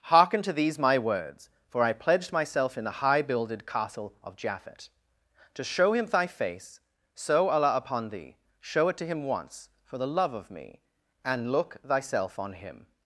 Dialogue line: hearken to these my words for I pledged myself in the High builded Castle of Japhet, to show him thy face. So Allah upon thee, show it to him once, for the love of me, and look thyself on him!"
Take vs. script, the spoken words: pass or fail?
pass